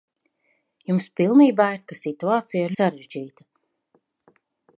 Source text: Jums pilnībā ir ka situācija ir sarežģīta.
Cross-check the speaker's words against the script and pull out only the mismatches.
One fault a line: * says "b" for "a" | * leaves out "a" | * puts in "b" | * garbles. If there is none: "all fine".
all fine